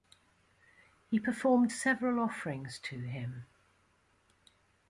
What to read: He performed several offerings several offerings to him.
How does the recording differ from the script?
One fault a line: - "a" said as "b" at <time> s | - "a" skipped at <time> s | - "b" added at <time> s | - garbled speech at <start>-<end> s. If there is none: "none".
- "several offerings" skipped at 2.8 s